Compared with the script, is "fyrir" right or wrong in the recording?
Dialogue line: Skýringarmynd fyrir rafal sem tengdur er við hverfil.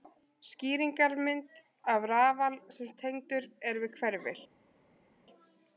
wrong